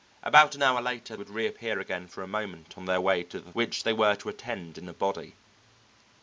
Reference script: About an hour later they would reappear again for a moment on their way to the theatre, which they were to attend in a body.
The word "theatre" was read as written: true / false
false